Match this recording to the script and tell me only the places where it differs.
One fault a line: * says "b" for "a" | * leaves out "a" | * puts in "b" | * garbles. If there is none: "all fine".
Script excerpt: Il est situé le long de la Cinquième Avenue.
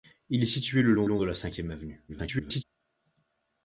* puts in "long"
* garbles